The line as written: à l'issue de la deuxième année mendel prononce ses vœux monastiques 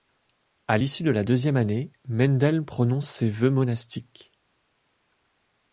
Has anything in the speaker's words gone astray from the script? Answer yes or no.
no